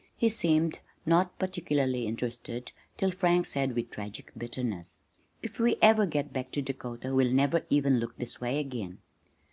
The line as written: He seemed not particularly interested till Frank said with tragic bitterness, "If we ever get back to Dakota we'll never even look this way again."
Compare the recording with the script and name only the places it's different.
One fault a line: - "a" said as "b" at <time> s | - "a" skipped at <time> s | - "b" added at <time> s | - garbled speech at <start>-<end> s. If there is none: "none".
none